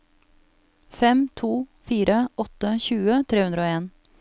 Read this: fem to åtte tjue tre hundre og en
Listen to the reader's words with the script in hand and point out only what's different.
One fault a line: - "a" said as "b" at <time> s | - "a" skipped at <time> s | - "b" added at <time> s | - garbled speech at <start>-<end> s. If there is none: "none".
- "fire" added at 1.9 s